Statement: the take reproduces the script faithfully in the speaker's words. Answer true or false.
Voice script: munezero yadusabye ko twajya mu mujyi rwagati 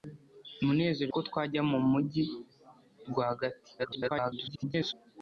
false